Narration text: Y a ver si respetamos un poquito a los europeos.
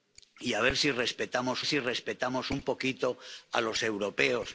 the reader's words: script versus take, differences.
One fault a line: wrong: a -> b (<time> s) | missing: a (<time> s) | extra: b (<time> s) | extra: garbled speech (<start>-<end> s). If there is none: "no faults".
extra: si respetamos (1.6 s)